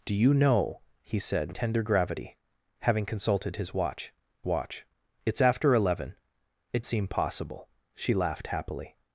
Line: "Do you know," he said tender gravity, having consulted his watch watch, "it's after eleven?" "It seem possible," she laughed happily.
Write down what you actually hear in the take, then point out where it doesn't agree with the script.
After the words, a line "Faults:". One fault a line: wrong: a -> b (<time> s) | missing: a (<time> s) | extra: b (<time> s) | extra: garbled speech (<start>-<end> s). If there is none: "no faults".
"Do you know," he said tender gravity, having consulted his watch watch, "it's after eleven?" "It seem possible," she laughed happily.
Faults:
no faults